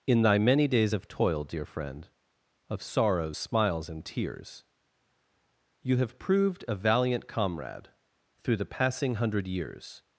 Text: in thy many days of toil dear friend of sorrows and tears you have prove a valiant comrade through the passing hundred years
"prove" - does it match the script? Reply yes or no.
no